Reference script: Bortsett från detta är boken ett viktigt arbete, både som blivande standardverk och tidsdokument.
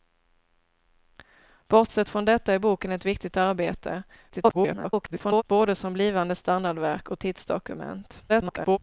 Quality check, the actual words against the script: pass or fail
fail